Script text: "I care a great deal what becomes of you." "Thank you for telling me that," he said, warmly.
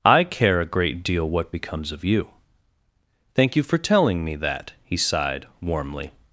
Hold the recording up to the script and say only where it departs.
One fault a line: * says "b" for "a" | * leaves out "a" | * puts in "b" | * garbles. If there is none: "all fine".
* says "sighed" for "said"